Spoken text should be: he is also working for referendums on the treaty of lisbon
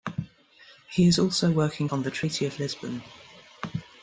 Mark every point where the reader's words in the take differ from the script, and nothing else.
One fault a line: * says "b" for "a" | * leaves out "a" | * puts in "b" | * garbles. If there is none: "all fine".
* leaves out "for referendums"